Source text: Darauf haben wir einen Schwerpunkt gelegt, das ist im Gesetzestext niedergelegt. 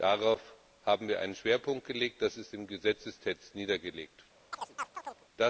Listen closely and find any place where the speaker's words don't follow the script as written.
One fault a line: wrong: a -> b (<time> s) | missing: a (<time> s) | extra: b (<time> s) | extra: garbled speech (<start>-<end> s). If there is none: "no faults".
no faults